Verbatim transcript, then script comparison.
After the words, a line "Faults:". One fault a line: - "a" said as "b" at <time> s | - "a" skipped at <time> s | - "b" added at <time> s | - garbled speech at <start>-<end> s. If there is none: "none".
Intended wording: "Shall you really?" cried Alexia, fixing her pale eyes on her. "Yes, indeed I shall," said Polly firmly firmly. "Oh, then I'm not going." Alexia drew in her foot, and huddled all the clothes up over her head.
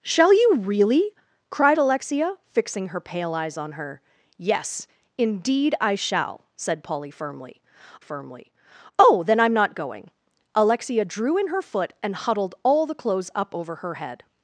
"Shall you really?" cried Alexia, fixing her pale eyes on her. "Yes, indeed I shall," said Polly firmly firmly. "Oh, then I'm not going." Alexia drew in her foot, and huddled all the clothes up over her head.
Faults:
none